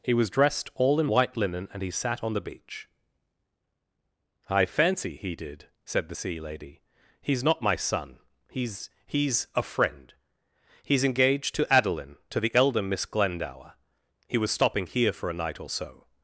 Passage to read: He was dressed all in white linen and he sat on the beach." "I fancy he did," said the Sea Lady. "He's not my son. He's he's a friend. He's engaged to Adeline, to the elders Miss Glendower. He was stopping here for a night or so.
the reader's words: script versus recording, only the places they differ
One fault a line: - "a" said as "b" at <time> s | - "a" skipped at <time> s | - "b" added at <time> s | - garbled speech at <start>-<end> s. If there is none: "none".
- "elders" said as "elder" at 12.5 s